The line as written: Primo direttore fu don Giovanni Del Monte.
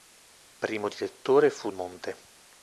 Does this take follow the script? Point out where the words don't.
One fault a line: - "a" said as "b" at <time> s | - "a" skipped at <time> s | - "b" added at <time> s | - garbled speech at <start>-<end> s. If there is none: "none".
- "don Giovanni Del" skipped at 1.7 s